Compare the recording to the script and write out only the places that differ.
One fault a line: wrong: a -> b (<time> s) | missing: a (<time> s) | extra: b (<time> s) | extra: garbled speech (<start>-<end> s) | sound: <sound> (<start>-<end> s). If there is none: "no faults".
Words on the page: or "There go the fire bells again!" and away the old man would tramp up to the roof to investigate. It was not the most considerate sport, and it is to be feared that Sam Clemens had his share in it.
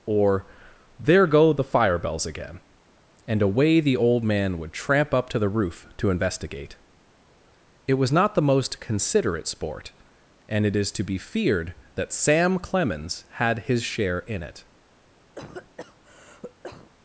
sound: cough (15.3-16.9 s)